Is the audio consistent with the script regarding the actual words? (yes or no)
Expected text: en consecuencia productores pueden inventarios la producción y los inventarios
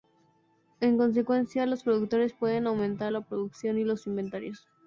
no